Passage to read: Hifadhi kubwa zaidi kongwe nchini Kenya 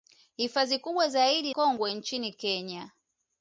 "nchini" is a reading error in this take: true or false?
false